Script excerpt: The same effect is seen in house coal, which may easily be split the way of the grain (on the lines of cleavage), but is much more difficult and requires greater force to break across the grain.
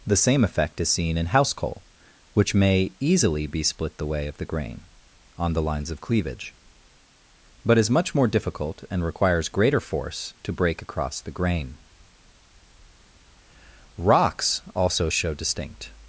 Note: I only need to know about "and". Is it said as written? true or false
true